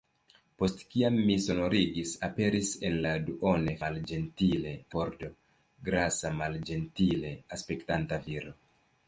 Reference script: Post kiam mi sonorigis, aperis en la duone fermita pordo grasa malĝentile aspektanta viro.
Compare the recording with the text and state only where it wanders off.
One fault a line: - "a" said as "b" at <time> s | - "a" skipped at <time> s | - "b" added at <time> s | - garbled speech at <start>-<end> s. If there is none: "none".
- "fermita" said as "malĝentile" at 3.8 s